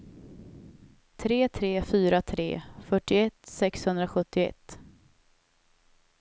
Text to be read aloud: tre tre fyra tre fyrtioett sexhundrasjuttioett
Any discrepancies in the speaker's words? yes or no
no